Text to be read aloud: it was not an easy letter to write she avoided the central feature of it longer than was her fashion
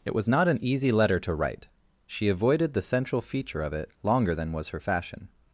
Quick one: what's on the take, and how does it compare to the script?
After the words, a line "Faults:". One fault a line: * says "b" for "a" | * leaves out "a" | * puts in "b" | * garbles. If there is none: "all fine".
it was not an easy letter to write she avoided the central feature of it longer than was her fashion
Faults:
all fine